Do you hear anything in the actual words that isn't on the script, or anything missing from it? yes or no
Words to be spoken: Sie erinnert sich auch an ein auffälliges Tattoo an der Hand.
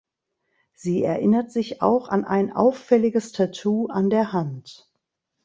no